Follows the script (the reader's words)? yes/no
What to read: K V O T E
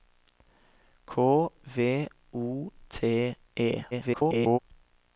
no